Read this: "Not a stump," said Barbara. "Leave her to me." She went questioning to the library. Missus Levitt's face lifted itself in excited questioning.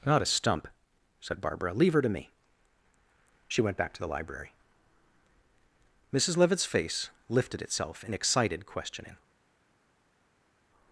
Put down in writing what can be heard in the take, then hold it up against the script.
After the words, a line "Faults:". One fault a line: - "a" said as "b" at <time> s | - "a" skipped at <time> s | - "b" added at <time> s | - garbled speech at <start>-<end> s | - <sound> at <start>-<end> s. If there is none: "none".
"Not a stump," said Barbara. "Leave her to me." She went back to the library. Missus Levitt's face lifted itself in excited questioning.
Faults:
- "questioning" said as "back" at 3.8 s